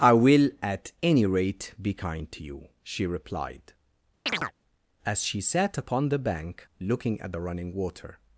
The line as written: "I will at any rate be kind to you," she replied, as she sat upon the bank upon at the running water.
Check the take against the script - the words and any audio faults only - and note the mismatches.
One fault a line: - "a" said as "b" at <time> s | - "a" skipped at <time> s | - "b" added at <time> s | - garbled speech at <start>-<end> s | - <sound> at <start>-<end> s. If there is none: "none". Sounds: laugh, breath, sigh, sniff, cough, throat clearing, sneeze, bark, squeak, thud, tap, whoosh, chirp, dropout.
- chirp at 4.3-4.5 s
- "upon" said as "looking" at 6.8 s